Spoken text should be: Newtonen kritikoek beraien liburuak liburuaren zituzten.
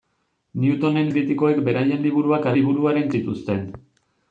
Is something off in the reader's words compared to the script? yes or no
no